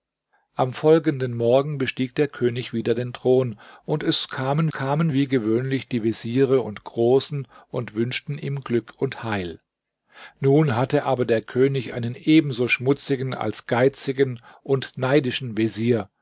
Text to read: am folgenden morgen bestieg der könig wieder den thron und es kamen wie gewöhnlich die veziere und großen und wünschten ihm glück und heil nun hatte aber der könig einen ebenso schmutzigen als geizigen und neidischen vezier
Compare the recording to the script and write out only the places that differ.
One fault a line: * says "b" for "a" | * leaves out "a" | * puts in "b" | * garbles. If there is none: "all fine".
* puts in "kamen"